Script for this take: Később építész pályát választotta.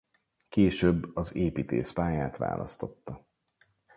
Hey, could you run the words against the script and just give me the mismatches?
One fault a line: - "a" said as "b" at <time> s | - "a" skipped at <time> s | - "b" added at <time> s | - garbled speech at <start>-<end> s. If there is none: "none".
- "az" added at 1.1 s